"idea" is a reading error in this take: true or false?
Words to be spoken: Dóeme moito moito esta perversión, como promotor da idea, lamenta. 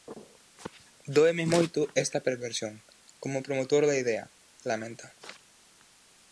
false